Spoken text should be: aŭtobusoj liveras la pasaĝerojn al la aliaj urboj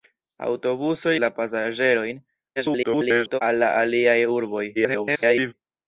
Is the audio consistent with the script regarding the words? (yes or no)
no